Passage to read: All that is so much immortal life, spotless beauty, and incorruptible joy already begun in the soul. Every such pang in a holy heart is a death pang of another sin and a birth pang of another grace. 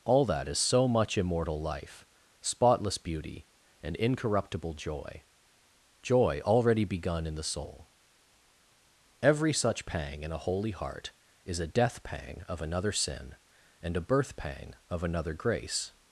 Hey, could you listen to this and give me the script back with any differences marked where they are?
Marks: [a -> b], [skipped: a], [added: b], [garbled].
All that is so much immortal life, spotless beauty, and incorruptible joy [added: joy] already begun in the soul. Every such pang in a holy heart is a death pang of another sin and a birth pang of another grace.